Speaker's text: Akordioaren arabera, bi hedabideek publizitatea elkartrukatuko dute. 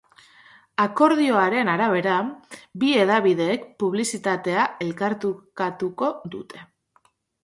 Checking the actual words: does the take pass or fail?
pass